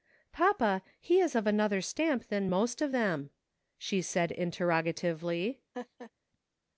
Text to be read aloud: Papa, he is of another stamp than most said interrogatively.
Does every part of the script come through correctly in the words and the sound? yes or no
no